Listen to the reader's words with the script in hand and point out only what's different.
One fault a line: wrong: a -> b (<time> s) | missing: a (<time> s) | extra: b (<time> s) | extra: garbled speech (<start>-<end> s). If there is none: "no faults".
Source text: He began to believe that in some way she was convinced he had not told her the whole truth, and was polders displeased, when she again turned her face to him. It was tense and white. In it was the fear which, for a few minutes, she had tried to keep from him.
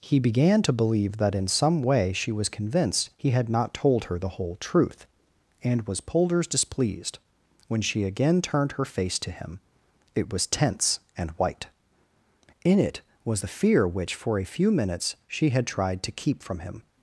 no faults